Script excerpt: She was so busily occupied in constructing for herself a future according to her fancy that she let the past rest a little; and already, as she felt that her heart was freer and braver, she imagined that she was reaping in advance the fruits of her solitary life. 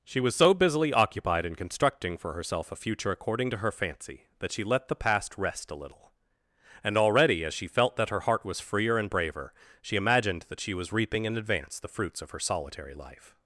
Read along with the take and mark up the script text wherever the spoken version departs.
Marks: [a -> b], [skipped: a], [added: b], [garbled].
She was so busily occupied in constructing for herself a future according to her fancy that she let the past rest a little; and already, as she felt that her heart was freer and braver, she imagined that she was reaping in advance the fruits of her solitary life.